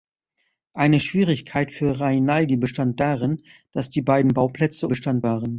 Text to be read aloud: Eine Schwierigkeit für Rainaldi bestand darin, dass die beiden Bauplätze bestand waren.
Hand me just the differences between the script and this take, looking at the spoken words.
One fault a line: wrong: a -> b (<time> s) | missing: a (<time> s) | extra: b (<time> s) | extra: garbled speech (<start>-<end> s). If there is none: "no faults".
no faults